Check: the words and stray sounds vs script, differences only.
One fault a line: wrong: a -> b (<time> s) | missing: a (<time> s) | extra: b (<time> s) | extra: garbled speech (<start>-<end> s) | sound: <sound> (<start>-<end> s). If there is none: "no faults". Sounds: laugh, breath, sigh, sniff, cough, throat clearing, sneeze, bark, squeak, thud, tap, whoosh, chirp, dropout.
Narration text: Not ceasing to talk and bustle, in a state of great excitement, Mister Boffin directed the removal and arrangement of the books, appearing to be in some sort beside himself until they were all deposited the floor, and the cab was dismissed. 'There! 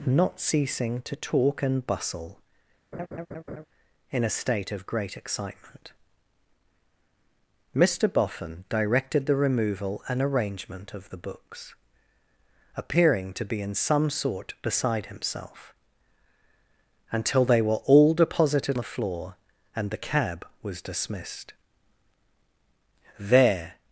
sound: laugh (2.9-3.7 s)